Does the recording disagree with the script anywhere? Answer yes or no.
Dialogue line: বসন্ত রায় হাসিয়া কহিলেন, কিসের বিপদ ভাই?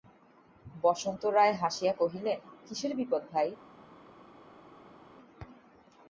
no